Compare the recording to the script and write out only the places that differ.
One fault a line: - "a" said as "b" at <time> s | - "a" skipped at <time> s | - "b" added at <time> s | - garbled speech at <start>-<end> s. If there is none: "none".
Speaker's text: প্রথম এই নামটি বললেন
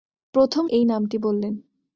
none